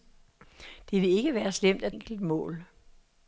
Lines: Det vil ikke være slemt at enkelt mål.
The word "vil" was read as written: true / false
true